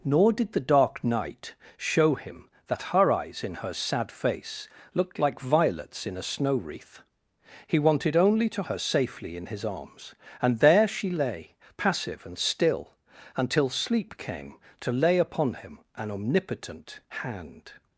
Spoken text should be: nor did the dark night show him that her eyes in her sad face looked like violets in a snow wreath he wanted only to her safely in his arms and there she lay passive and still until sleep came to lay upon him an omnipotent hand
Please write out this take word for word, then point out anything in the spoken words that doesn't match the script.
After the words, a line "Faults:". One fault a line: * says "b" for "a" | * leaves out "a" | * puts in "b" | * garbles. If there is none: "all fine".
nor did the dark night show him that her eyes in her sad face looked like violets in a snow wreath he wanted only to her safely in his arms and there she lay passive and still until sleep came to lay upon him an omnipotent hand
Faults:
all fine